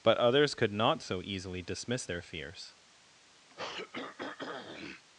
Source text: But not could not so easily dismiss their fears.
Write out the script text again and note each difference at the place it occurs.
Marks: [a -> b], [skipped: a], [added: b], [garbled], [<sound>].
But [not -> others] could not so easily dismiss their fears. [throat clearing]